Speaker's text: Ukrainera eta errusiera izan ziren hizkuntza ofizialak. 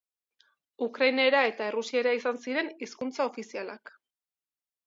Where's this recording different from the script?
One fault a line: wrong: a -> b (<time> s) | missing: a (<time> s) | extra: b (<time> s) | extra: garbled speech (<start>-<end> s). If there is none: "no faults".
no faults